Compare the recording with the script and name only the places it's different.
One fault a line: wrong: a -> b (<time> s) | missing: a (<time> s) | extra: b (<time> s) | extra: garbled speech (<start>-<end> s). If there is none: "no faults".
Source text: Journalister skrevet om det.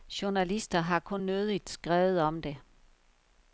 extra: har kun nødigt (0.8 s)